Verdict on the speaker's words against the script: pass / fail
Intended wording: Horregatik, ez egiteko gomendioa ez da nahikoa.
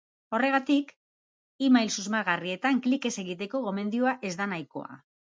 fail